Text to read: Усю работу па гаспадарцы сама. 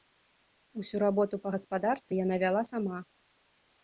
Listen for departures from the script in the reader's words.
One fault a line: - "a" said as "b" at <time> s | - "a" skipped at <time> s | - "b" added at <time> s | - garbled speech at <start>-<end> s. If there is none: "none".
- "яна вяла" added at 2.2 s